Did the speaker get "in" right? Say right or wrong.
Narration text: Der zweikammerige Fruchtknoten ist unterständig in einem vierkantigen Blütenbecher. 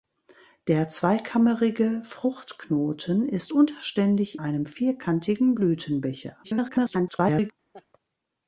wrong